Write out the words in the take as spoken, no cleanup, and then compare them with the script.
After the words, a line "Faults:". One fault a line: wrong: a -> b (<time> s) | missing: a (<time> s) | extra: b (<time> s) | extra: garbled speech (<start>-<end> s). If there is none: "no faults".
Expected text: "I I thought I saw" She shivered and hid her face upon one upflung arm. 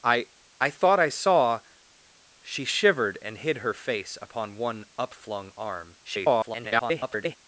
"I I thought I saw" She shivered and hid her face upon one upflung arm. [garbled]
Faults:
extra: garbled speech (6.0-7.4 s)